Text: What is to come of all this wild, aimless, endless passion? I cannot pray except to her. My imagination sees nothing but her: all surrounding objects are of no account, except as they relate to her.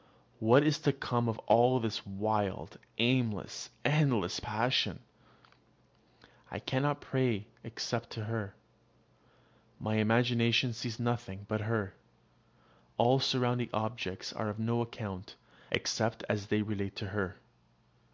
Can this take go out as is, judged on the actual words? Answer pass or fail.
pass